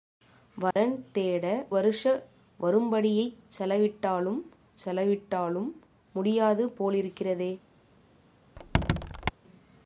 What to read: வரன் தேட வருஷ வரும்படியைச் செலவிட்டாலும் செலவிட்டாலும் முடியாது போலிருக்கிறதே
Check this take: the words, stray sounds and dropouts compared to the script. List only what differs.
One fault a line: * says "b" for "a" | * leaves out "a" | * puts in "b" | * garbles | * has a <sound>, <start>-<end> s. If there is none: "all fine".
* has a dropout, 0.7-0.8 s
* has a squeak, 8.6-9.3 s